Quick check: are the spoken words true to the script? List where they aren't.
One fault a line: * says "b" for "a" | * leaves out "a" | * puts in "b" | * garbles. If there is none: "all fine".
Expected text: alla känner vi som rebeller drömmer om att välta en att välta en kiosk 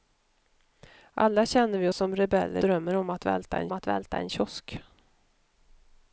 all fine